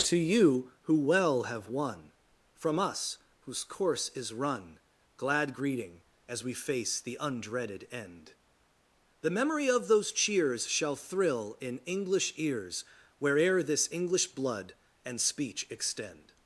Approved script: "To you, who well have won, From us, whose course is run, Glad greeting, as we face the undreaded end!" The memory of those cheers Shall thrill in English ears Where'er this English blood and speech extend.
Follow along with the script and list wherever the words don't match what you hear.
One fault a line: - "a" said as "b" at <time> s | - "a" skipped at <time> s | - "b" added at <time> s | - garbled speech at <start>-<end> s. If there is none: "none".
none